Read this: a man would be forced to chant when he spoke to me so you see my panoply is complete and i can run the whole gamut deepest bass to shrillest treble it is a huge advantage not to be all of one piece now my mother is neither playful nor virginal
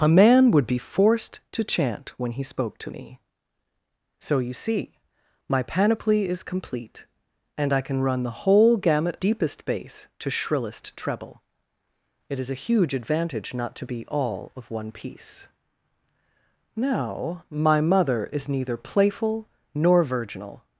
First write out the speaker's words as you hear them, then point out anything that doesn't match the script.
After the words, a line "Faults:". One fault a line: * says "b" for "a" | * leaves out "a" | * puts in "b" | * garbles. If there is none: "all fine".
a man would be forced to chant when he spoke to me so you see my panoply is complete and i can run the whole gamut deepest bass to shrillest treble it is a huge advantage not to be all of one piece now my mother is neither playful nor virginal
Faults:
all fine